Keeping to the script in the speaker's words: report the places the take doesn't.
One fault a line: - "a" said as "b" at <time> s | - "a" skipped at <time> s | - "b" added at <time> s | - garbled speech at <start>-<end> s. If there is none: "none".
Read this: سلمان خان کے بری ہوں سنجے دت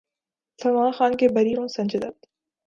none